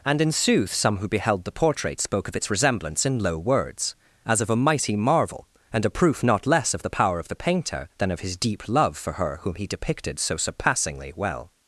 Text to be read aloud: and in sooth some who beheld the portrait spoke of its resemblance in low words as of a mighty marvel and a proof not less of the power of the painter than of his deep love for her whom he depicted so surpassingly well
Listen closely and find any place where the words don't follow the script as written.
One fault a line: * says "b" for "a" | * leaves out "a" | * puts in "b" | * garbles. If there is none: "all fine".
all fine